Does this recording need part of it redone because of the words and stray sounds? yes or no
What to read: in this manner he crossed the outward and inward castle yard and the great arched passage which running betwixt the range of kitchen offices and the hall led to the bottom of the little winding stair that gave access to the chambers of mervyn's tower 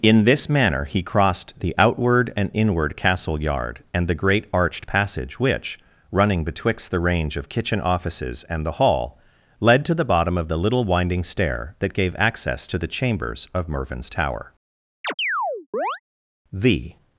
yes